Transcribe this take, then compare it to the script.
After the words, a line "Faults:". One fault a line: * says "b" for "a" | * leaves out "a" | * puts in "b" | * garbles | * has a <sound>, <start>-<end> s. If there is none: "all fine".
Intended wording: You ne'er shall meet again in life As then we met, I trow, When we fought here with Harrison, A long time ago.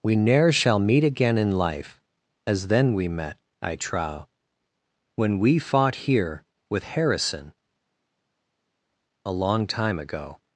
We ne'er shall meet again in life As then we met, I trow, When we fought here with Harrison, A long time ago.
Faults:
* says "We" for "You"